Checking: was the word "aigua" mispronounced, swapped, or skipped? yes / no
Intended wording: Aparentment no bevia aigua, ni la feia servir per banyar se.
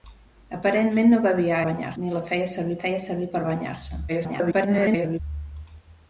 yes